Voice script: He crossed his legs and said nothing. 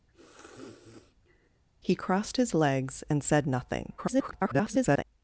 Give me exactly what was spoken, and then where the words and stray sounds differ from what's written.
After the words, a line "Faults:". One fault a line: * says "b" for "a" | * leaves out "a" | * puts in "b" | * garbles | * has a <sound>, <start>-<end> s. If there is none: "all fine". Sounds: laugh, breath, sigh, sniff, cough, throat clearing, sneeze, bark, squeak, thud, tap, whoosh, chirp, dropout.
He crossed his legs and said nothing. [garbled]
Faults:
* has a sniff, 0.1-1.6 s
* garbles